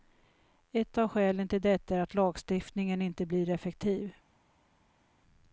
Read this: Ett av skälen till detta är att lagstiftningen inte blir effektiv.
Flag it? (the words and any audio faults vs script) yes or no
no